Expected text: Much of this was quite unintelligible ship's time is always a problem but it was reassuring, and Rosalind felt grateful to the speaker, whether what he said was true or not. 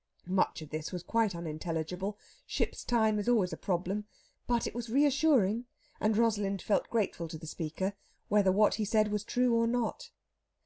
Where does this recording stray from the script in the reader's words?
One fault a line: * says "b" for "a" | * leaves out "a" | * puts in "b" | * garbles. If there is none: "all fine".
all fine